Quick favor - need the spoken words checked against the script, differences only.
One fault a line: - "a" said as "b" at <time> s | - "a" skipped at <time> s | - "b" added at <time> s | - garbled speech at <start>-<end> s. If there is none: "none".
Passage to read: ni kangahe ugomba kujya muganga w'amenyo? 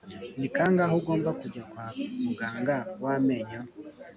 - "kwa" added at 1.7 s